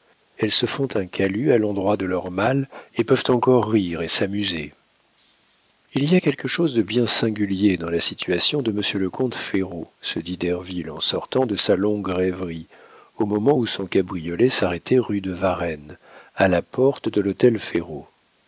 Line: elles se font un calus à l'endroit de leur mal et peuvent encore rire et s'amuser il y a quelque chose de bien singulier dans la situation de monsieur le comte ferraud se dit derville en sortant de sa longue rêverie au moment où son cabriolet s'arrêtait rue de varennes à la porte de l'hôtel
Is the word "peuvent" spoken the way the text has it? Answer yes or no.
yes